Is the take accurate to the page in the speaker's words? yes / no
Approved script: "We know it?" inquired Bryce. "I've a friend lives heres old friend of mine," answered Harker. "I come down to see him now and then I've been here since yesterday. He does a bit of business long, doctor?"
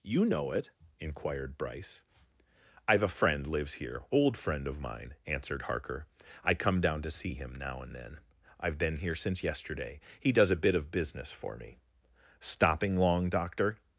no